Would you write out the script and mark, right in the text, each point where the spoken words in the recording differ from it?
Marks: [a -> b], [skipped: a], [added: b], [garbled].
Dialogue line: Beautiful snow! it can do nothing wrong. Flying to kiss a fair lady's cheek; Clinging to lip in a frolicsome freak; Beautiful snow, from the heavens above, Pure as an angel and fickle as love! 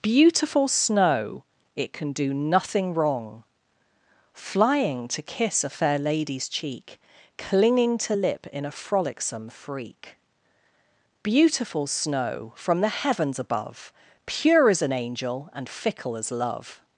Beautiful snow! it can do nothing wrong. Flying to kiss a fair lady's cheek; Clinging to lip in a frolicsome freak; Beautiful snow, from the heavens above, Pure as an angel and fickle as love!